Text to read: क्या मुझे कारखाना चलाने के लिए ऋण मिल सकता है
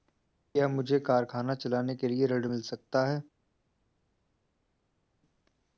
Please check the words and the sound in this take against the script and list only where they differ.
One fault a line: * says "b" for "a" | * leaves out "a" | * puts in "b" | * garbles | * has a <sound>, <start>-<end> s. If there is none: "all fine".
all fine